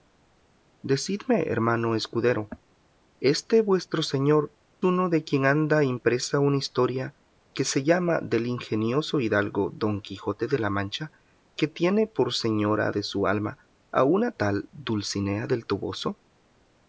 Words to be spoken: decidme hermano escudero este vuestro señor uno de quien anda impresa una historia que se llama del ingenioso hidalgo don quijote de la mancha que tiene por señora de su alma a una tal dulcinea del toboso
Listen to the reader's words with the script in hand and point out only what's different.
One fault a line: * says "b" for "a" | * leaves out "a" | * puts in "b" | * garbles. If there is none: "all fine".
all fine